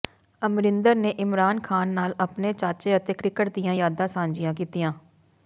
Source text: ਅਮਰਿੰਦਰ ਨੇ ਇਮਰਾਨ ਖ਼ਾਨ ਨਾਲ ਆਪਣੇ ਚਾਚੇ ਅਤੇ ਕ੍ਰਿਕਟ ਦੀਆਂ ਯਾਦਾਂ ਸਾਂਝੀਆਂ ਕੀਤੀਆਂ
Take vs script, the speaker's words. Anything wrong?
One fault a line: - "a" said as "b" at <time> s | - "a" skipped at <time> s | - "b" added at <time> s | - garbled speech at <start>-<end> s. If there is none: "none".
none